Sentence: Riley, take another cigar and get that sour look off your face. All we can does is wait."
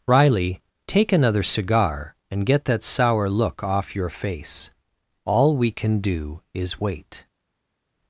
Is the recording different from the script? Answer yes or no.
yes